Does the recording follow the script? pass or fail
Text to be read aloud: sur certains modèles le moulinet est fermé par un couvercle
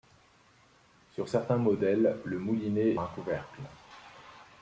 fail